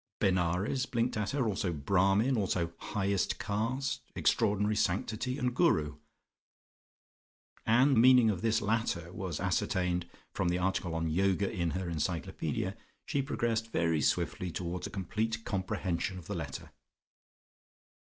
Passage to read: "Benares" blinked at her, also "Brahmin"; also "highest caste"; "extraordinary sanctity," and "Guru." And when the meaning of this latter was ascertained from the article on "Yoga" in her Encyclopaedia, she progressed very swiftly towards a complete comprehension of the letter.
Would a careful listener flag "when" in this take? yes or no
yes